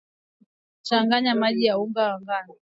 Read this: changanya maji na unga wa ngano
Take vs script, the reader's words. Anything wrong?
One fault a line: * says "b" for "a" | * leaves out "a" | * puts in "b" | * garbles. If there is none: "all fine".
all fine